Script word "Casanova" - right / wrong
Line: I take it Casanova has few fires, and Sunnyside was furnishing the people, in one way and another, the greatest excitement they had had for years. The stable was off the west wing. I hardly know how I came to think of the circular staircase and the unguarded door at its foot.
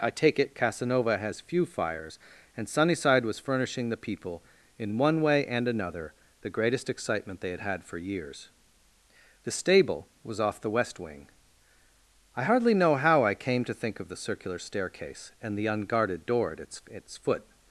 right